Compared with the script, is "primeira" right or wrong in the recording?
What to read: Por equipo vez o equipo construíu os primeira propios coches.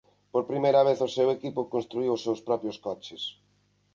wrong